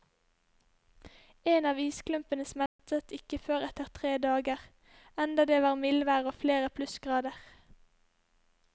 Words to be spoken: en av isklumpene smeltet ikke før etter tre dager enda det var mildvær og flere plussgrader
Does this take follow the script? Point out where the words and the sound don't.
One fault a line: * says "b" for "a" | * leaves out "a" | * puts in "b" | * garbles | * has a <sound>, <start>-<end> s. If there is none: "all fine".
* has a dropout, 2.7-2.8 s